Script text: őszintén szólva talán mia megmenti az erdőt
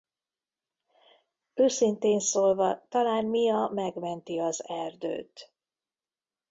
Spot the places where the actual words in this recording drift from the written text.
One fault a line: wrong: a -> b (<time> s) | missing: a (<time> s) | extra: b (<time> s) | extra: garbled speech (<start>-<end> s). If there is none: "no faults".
no faults